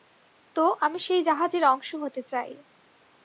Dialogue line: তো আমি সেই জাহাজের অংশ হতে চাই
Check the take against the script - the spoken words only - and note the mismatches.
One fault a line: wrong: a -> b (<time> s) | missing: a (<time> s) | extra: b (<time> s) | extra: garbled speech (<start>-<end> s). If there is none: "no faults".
no faults